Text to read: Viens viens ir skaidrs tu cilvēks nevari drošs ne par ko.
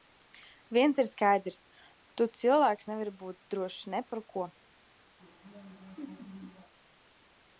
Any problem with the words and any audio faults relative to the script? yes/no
yes